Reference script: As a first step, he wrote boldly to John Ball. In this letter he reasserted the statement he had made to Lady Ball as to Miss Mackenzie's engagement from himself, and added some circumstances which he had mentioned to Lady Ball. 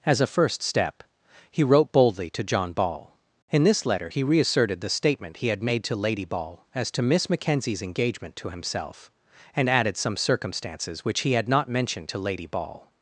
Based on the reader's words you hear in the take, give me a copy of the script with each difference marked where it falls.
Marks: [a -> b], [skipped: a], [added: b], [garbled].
As a first step, he wrote boldly to John Ball. In this letter he reasserted the statement he had made to Lady Ball as to Miss Mackenzie's engagement [from -> to] himself, and added some circumstances which he had [added: not] mentioned to Lady Ball.